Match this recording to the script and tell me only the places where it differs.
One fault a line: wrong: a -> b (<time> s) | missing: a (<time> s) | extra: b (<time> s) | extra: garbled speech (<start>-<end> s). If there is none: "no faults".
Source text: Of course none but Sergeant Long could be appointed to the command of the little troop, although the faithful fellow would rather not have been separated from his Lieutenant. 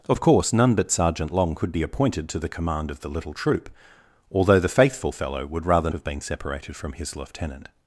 missing: not (5.9 s)